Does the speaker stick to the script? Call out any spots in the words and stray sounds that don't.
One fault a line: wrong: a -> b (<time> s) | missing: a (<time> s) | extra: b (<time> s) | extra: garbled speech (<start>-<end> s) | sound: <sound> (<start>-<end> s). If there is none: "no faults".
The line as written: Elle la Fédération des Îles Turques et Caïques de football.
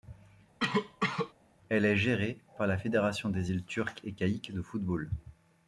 sound: cough (0.6-1.3 s)
extra: est gérée par (1.8 s)